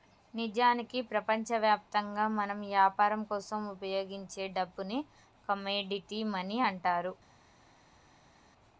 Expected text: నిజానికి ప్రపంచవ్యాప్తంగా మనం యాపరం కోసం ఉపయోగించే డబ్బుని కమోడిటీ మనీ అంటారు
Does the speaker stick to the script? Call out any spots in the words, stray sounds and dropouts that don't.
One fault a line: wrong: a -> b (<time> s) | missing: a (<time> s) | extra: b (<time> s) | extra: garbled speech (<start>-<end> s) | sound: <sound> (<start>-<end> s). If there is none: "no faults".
no faults